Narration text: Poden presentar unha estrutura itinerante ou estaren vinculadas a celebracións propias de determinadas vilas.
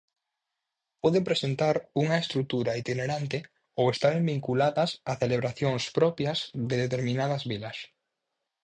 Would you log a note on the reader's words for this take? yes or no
no